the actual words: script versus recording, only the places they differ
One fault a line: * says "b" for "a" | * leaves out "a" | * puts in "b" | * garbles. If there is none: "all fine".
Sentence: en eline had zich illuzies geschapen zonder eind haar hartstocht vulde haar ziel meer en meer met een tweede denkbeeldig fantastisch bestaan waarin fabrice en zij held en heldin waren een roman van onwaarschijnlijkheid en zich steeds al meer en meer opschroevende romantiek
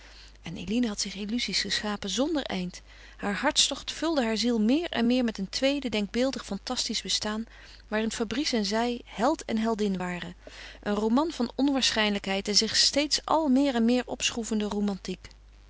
all fine